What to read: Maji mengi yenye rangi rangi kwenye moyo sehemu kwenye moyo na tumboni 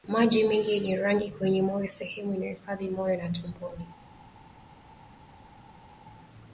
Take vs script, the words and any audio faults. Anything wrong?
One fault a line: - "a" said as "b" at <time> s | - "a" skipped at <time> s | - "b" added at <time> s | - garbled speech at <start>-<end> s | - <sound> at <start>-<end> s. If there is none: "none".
- "rangi" skipped at 1.3 s
- "kwenye" said as "inayohifadhi" at 2.3 s